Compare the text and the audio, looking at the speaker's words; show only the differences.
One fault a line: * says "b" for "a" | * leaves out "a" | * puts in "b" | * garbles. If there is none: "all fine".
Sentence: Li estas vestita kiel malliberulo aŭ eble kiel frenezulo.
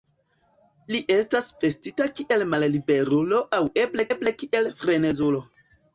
* puts in "eble"